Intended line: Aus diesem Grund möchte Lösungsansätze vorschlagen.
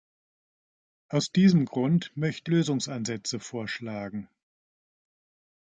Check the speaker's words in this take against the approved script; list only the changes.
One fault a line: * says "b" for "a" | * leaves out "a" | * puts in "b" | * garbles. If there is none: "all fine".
all fine